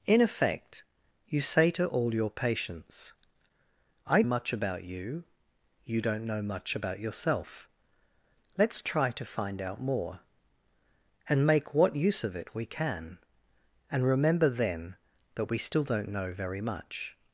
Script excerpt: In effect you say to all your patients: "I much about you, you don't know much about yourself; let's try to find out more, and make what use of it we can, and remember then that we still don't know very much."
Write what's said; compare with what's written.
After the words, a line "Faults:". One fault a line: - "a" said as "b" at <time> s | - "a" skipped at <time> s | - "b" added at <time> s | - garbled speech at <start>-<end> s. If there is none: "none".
In effect you say to all your patients: "I much about you, you don't know much about yourself; let's try to find out more, and make what use of it we can, and remember then that we still don't know very much."
Faults:
none